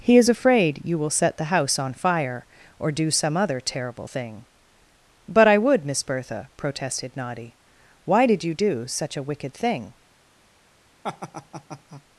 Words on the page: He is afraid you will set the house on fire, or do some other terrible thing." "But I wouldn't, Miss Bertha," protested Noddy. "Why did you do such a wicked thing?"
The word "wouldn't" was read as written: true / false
false